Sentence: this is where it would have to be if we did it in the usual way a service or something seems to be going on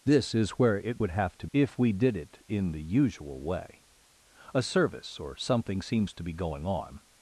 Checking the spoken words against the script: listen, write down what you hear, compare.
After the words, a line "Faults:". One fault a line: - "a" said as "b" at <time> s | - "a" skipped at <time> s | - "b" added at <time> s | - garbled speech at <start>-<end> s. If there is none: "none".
this is where it would have to if we did it in the usual way a service or something seems to be going on
Faults:
- "be" skipped at 1.5 s